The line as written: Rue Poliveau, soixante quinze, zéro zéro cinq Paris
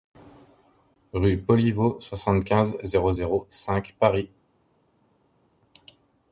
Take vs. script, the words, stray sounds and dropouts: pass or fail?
pass